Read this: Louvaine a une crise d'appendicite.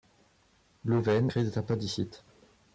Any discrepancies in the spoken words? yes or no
yes